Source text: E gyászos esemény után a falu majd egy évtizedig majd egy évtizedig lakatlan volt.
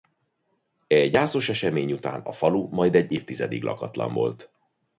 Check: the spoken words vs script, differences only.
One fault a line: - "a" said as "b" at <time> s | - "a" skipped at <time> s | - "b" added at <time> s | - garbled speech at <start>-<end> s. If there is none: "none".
- "majd egy évtizedig" skipped at 3.6 s